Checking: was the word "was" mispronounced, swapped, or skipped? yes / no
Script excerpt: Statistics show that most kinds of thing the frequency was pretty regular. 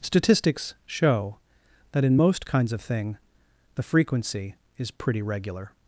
yes